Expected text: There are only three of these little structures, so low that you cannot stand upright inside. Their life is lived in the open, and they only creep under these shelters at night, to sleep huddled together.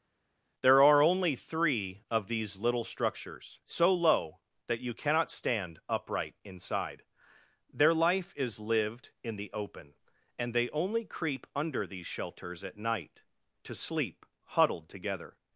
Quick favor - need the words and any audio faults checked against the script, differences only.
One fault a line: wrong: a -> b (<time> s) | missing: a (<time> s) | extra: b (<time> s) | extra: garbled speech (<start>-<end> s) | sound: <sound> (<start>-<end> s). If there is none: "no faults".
no faults